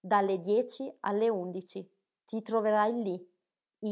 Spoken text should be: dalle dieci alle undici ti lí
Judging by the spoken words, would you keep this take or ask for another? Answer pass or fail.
fail